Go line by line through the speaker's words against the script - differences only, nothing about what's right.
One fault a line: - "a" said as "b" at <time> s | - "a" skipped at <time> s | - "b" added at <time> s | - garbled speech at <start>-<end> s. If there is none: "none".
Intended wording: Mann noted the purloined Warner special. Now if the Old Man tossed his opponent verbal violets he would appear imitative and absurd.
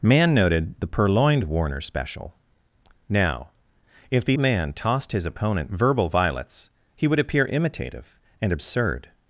- "Old" skipped at 4.4 s